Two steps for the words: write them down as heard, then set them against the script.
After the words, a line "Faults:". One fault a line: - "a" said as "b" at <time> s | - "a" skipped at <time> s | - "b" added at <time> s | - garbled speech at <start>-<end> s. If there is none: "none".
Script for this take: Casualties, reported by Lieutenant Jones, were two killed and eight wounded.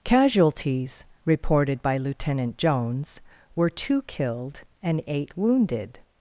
Casualties, reported by Lieutenant Jones, were two killed and eight wounded.
Faults:
none